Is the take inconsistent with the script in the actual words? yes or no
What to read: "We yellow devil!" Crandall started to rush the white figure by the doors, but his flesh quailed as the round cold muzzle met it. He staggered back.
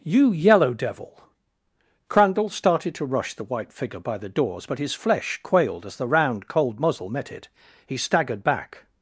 yes